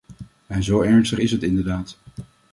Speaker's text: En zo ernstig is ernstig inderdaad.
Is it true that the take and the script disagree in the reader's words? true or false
true